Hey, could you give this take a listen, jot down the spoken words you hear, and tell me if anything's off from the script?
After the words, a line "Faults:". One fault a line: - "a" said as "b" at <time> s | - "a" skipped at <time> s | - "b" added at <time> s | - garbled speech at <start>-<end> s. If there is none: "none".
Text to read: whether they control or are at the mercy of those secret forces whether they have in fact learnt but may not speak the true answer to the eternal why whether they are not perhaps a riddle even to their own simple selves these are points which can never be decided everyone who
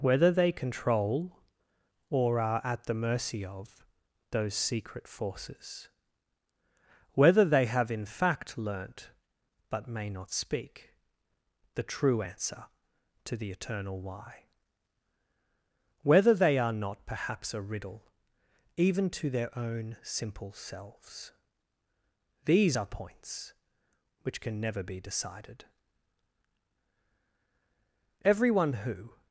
whether they control or are at the mercy of those secret forces whether they have in fact learnt but may not speak the true answer to the eternal why whether they are not perhaps a riddle even to their own simple selves these are points which can never be decided everyone who
Faults:
none